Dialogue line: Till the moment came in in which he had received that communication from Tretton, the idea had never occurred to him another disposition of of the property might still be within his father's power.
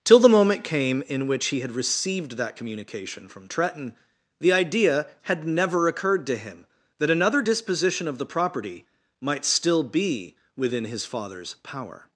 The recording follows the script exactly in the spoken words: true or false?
false